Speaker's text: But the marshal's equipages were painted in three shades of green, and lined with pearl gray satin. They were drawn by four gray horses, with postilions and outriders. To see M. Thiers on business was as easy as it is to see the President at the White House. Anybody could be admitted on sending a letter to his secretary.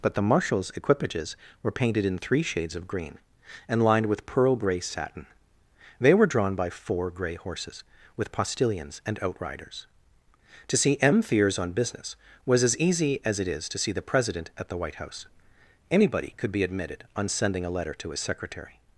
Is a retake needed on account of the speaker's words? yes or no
no